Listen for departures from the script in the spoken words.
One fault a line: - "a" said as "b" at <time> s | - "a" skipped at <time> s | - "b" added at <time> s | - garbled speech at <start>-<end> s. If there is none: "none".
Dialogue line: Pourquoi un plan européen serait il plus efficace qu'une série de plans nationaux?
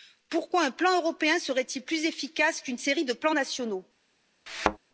none